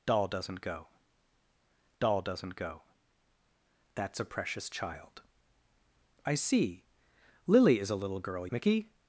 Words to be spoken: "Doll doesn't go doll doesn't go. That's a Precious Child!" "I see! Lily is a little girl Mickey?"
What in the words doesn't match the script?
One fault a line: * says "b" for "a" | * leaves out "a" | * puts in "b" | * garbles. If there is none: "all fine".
all fine